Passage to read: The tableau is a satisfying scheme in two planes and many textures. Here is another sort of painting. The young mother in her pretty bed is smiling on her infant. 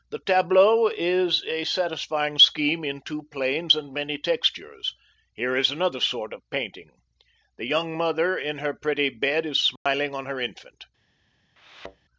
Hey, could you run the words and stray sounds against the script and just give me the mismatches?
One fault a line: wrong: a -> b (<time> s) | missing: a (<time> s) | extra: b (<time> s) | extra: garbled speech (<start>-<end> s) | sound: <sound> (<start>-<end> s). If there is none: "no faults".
sound: dropout (9.8-9.9 s)
sound: thud (11.6-12.1 s)